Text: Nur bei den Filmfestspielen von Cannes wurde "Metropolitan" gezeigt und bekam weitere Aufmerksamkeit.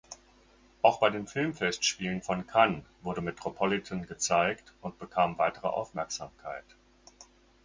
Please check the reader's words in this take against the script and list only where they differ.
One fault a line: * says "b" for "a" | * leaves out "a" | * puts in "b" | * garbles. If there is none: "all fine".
* says "Auch" for "Nur"